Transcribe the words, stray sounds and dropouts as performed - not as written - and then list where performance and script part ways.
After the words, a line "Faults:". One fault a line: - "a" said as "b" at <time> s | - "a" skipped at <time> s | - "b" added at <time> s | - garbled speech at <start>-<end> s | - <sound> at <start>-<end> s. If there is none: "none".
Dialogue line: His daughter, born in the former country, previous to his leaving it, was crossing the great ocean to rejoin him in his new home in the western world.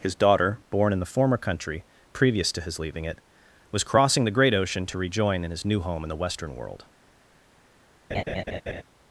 His daughter, born in the former country, previous to his leaving it, was crossing the great ocean to rejoin in his new home in the western world.
Faults:
- "him" skipped at 5.4 s
- laugh at 8.1-8.8 s